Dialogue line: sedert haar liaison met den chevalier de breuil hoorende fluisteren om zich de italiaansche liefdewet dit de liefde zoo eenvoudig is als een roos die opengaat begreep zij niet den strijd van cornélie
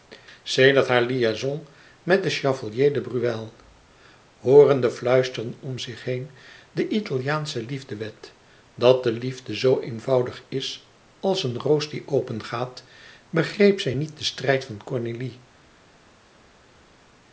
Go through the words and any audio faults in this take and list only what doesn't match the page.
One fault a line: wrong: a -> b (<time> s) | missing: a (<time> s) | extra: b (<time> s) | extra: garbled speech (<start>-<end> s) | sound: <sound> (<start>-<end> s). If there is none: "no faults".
extra: heen (6.0 s)
wrong: dit -> dat (8.8 s)